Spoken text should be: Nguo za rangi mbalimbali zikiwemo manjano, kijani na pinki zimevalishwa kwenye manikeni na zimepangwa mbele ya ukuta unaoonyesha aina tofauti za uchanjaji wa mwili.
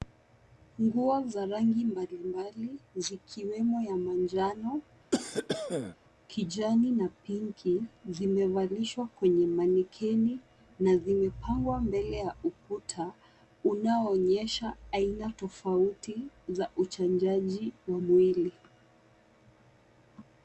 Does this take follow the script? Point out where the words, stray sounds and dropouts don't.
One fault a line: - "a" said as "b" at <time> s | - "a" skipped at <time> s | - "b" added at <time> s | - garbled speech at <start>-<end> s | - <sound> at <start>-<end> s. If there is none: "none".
- "ya" added at 3.8 s
- cough at 5.1-6.0 s